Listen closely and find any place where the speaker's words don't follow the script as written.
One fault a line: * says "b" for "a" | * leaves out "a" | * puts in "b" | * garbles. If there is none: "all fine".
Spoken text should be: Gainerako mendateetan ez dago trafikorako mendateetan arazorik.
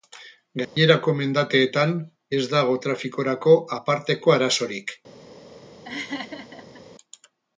* says "aparteko" for "mendateetan"